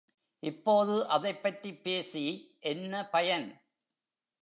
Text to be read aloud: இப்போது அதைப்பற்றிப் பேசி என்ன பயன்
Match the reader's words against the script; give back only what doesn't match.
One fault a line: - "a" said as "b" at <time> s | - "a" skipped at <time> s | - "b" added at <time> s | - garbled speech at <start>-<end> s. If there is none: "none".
none